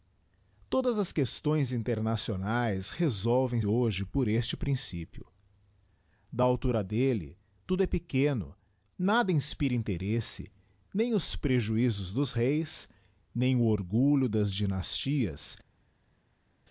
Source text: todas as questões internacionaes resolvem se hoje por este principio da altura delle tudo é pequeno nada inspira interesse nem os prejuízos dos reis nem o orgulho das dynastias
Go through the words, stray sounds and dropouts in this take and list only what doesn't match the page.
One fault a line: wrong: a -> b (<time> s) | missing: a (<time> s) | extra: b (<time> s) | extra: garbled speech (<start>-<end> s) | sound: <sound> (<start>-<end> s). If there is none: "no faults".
missing: se (3.6 s)